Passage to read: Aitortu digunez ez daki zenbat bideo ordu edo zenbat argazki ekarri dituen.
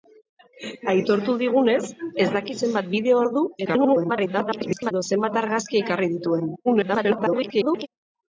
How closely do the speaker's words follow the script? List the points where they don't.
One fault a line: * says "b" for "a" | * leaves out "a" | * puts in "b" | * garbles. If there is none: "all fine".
* garbles
* garbles